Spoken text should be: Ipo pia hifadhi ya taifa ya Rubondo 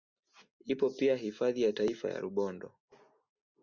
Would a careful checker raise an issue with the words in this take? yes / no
no